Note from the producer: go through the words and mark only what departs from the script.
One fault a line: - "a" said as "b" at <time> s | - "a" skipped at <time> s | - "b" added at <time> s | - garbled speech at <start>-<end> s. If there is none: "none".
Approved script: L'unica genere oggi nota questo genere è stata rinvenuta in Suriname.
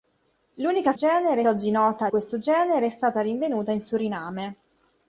none